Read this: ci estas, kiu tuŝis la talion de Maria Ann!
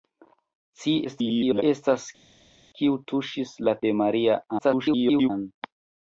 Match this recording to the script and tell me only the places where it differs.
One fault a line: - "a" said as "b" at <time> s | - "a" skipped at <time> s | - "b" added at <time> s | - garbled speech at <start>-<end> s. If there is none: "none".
- garbled speech at 1.0-1.6 s
- "talion" skipped at 3.8 s
- garbled speech at 4.6-5.3 s